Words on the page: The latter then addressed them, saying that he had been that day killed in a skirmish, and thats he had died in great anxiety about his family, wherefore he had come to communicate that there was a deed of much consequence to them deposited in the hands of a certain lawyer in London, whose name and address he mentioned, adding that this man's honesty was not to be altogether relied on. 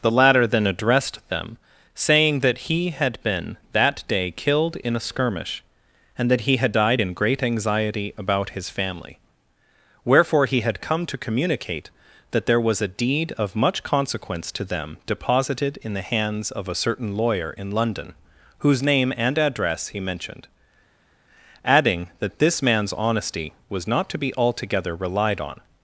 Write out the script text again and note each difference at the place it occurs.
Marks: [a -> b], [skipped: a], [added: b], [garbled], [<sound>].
The latter then addressed them, saying that he had been that day killed in a skirmish, and [thats -> that] he had died in great anxiety about his family, wherefore he had come to communicate that there was a deed of much consequence to them deposited in the hands of a certain lawyer in London, whose name and address he mentioned, adding that this man's honesty was not to be altogether relied on.